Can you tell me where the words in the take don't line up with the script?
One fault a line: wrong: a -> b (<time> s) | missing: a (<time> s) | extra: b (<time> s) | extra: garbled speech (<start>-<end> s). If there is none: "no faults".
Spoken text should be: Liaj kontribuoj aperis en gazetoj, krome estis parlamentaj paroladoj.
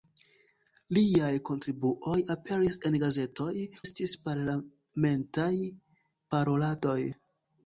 missing: krome (3.5 s)